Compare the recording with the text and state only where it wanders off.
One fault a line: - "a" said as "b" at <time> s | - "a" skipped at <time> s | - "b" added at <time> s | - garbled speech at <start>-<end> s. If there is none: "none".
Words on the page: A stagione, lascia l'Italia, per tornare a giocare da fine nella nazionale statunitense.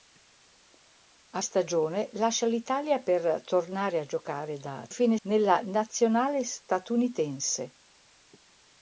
none